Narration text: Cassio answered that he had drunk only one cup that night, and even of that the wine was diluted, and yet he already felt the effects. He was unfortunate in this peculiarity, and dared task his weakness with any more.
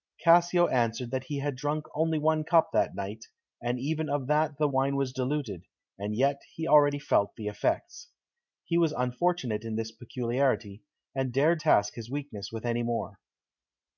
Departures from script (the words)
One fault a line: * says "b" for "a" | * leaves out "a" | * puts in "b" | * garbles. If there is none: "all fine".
all fine